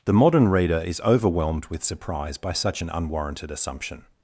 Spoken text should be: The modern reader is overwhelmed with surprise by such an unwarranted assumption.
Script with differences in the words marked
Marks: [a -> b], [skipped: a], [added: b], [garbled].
The modern reader is overwhelmed with surprise by such an unwarranted assumption.